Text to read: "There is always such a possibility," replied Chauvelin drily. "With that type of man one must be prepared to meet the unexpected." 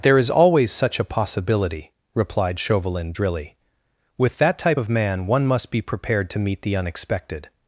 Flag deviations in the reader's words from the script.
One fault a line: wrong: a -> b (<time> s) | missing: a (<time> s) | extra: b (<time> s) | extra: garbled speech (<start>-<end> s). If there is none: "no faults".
no faults